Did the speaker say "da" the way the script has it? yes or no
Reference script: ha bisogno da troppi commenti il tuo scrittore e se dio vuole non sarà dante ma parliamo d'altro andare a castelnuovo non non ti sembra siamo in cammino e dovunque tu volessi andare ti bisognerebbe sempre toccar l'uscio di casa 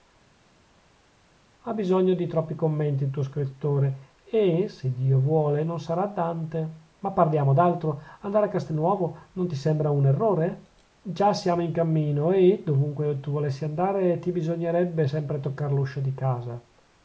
no